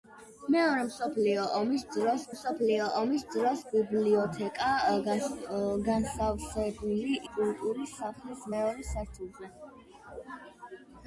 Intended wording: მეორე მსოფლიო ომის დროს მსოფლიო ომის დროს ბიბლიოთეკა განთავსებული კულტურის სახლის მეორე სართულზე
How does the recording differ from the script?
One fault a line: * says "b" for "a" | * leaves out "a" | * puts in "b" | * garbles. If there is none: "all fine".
all fine